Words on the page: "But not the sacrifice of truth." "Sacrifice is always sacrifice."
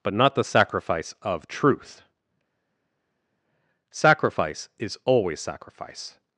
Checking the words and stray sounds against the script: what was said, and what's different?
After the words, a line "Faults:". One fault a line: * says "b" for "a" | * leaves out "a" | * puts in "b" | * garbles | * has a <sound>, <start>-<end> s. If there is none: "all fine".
"But not the sacrifice of truth." "Sacrifice is always sacrifice."
Faults:
all fine